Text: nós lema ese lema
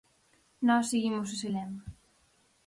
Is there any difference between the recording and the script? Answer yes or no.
yes